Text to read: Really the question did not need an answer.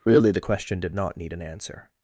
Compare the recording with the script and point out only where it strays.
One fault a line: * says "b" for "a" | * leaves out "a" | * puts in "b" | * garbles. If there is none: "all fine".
all fine